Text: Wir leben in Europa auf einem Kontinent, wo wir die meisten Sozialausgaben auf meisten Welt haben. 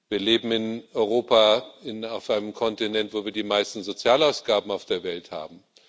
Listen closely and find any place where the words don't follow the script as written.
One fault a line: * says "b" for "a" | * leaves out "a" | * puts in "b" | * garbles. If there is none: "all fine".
* says "der" for "meisten"